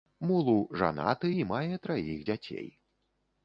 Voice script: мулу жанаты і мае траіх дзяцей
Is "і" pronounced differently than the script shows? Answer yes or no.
no